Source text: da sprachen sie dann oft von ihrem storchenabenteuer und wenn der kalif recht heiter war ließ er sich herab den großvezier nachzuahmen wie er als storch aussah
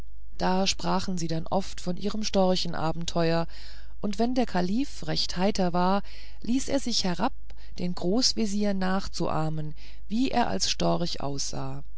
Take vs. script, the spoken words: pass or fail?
pass